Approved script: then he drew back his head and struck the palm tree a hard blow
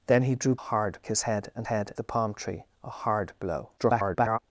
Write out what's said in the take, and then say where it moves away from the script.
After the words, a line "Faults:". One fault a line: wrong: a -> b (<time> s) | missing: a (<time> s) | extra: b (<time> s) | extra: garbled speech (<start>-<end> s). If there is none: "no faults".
then he drew hard his head and head the palm tree a hard blow [garbled]
Faults:
wrong: back -> hard (0.6 s)
wrong: struck -> head (1.7 s)
extra: garbled speech (3.8-4.4 s)